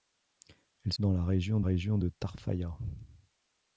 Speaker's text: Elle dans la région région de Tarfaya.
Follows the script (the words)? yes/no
yes